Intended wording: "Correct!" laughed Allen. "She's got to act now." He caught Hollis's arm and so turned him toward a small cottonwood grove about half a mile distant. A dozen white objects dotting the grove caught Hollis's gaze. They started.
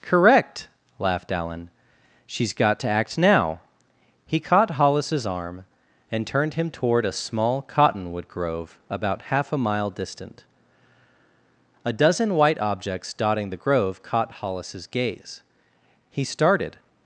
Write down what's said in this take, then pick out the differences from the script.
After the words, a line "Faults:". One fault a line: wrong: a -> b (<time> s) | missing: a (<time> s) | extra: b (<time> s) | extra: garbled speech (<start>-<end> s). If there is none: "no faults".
"Correct!" laughed Allen. "She's got to act now." He caught Hollis's arm and turned him toward a small cottonwood grove about half a mile distant. A dozen white objects dotting the grove caught Hollis's gaze. He started.
Faults:
missing: so (6.2 s)
wrong: They -> He (16.1 s)